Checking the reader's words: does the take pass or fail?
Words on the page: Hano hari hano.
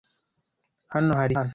pass